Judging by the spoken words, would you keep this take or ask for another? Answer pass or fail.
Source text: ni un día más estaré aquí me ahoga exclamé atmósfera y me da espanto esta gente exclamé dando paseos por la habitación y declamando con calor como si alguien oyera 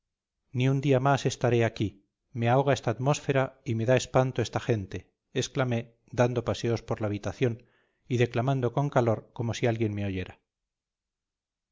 fail